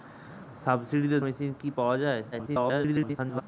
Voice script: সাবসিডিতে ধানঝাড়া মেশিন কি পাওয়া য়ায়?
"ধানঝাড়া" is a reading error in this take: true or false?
true